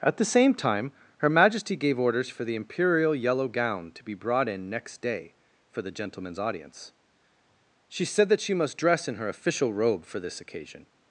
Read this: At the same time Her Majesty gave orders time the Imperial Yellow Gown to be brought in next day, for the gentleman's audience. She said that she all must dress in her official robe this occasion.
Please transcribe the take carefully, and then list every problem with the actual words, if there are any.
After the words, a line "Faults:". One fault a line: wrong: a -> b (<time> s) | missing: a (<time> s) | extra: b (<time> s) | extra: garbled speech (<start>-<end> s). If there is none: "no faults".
At the same time Her Majesty gave orders for the Imperial Yellow Gown to be brought in next day, for the gentleman's audience. She said that she must dress in her official robe for this occasion.
Faults:
wrong: time -> for (2.3 s)
missing: all (8.6 s)
extra: for (10.0 s)